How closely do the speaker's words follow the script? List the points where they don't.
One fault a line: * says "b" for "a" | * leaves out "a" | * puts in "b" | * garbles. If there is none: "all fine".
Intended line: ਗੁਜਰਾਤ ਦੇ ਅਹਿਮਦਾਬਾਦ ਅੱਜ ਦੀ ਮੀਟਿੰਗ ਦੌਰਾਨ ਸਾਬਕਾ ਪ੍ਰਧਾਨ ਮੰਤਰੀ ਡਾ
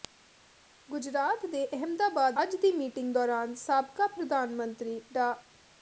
all fine